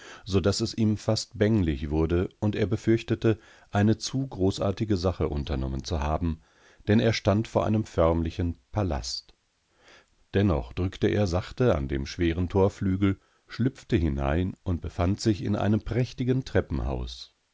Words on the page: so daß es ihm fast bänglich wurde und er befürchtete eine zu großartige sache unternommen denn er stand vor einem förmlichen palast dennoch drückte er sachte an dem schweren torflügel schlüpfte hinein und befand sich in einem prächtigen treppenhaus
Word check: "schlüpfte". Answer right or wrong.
right